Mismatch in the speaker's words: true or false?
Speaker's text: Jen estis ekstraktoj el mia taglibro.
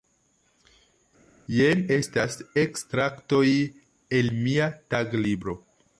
true